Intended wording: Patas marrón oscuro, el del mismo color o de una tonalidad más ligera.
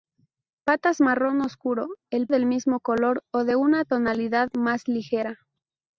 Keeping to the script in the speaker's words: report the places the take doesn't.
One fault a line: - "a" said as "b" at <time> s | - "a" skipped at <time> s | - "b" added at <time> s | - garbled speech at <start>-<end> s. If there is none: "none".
none